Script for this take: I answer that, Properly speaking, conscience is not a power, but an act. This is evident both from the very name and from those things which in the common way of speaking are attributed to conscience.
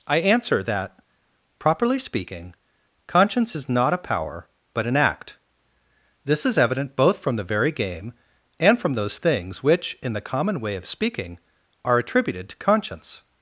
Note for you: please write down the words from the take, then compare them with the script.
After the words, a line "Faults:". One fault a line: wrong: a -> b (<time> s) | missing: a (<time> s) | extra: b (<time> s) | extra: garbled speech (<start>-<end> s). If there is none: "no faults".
I answer that, Properly speaking, conscience is not a power, but an act. This is evident both from the very game and from those things which in the common way of speaking are attributed to conscience.
Faults:
wrong: name -> game (7.7 s)